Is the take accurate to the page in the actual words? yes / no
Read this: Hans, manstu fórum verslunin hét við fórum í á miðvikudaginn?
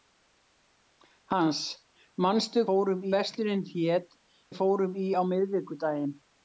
yes